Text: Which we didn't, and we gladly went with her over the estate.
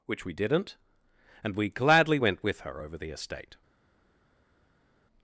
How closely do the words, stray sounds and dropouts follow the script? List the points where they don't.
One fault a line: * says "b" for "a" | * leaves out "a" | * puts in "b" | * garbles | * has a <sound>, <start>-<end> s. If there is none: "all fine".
all fine